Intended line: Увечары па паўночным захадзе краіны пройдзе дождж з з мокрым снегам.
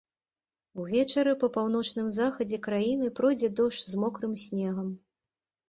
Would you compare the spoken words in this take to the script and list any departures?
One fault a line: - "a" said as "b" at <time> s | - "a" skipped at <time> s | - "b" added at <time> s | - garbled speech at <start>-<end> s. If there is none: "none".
- "з" skipped at 4.0 s